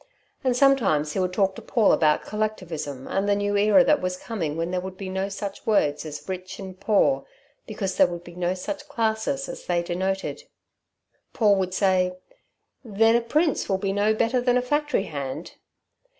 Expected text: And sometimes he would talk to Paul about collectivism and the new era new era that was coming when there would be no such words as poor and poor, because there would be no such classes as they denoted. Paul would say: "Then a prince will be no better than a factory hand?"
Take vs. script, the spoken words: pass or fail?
fail